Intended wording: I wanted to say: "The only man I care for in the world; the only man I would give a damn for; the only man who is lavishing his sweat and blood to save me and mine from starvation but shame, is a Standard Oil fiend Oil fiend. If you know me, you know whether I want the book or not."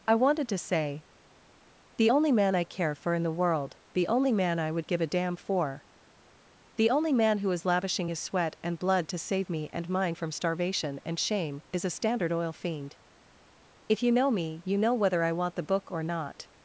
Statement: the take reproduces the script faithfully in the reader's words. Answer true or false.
false